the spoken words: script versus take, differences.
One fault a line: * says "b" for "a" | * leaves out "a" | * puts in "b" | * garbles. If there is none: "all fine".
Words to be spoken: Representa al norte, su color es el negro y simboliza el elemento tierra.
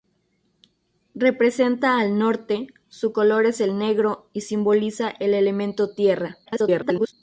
* garbles